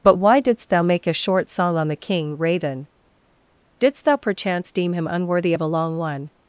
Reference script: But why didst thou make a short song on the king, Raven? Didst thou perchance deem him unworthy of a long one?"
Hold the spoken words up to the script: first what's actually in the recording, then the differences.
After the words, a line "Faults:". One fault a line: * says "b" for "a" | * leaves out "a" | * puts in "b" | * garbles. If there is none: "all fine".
But why didst thou make a short song on the king, Raven? Didst thou perchance deem him unworthy of a long one?"
Faults:
all fine